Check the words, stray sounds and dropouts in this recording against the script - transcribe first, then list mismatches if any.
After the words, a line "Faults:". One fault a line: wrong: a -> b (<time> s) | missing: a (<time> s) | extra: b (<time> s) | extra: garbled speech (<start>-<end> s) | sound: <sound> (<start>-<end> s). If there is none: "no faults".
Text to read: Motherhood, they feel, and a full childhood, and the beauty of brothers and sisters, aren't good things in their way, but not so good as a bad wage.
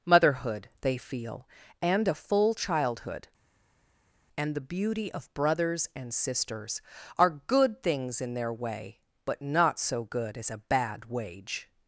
Motherhood, they feel, and a full childhood, and the beauty of brothers and sisters, are good things in their way, but not so good as a bad wage.
Faults:
wrong: aren't -> are (7.2 s)